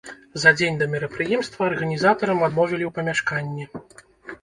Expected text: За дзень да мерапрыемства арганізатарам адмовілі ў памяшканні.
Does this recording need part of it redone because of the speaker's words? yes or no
no